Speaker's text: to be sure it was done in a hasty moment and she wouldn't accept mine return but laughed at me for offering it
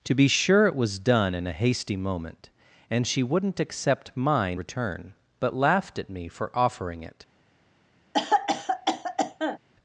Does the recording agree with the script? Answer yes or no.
yes